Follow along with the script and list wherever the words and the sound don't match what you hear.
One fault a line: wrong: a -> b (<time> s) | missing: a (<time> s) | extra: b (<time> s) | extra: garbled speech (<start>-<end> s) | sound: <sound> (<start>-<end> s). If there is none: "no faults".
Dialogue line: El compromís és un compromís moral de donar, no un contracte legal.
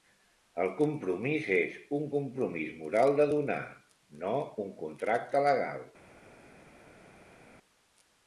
no faults